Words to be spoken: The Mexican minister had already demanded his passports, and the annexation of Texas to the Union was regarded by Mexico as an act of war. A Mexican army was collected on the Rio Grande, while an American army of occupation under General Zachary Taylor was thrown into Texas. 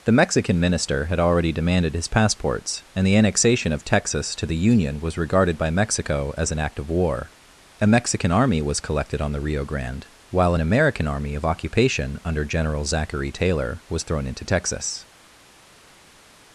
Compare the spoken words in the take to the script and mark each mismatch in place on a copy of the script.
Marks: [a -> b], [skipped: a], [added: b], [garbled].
The Mexican minister had already demanded his passports, and the annexation of Texas to the Union was regarded by Mexico as an act of war. A Mexican army was collected on the Rio Grande, while an American army of occupation under General Zachary Taylor was thrown into Texas.